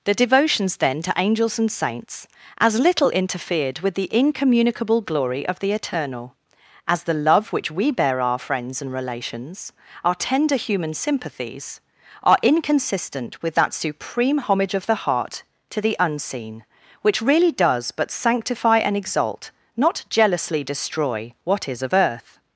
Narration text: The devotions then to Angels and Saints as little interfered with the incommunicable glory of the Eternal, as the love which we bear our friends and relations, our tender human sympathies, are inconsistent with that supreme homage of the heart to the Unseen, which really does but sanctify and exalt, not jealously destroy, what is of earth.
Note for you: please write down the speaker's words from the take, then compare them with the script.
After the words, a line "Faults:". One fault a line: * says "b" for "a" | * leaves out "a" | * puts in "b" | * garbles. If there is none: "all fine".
The devotions then to Angels and Saints as little interfered with the incommunicable glory of the Eternal, as the love which we bear our friends and relations, our tender human sympathies, are inconsistent with that supreme homage of the heart to the Unseen, which really does but sanctify and exalt, not jealously destroy, what is of earth.
Faults:
all fine